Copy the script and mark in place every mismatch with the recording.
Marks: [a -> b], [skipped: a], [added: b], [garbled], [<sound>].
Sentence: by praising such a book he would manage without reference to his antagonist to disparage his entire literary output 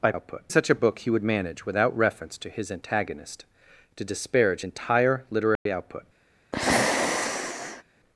by [praising -> output] such a book he would manage without reference to his antagonist to disparage [skipped: his] entire literary [dropout] output [sigh]